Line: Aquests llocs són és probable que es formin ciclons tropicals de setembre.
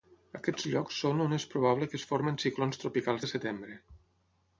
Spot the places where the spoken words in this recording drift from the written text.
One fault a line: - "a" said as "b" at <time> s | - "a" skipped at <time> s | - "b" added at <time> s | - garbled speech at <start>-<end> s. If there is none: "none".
- "on" added at 1.2 s